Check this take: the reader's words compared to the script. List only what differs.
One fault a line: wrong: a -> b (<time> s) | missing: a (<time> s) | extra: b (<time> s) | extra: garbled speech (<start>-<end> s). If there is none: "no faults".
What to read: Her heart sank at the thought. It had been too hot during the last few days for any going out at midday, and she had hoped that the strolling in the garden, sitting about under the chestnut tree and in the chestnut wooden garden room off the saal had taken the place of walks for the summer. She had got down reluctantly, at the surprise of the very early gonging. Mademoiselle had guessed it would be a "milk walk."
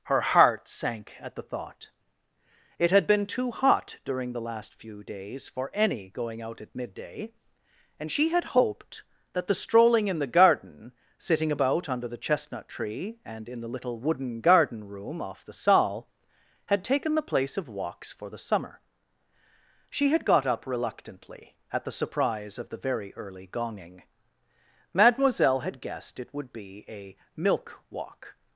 wrong: chestnut -> little (13.7 s)
wrong: down -> up (20.5 s)